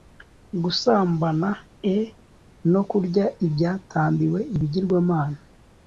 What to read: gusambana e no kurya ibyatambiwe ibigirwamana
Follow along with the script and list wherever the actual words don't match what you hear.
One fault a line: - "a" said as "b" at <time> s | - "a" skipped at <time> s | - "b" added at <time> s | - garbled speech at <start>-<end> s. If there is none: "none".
none